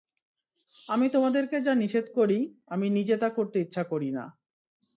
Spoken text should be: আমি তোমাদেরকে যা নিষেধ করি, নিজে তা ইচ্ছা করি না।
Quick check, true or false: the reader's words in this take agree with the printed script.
false